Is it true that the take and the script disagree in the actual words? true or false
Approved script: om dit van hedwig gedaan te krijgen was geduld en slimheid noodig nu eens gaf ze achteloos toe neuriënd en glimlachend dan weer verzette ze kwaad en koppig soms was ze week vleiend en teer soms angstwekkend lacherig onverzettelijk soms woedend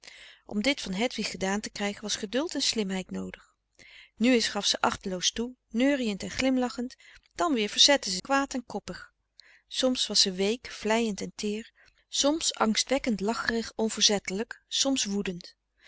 false